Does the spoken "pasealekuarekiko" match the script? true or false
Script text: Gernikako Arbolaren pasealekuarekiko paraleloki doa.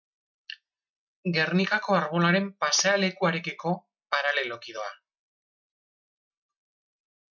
true